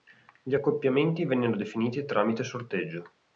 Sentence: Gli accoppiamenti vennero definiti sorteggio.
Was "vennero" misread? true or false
false